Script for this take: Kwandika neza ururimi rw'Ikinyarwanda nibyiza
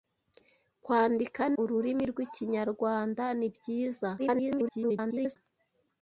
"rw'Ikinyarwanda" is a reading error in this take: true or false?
false